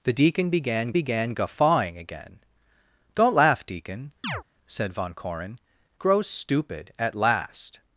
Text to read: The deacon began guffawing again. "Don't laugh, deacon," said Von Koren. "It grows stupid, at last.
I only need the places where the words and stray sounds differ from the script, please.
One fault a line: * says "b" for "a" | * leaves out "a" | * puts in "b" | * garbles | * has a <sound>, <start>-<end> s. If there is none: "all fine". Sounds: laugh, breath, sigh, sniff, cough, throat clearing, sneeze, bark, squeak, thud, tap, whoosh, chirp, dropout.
* puts in "began"
* has a chirp, 4.2-4.4 s
* leaves out "It"